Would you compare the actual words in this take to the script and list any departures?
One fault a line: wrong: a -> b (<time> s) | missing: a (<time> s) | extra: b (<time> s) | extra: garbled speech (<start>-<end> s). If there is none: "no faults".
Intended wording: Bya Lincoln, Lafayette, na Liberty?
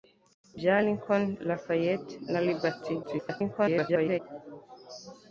extra: garbled speech (3.0-4.2 s)